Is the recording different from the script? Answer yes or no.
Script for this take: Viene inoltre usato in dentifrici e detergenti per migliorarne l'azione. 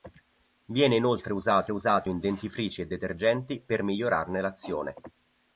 yes